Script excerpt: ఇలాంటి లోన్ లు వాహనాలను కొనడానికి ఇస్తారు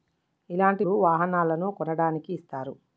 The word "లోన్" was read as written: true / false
false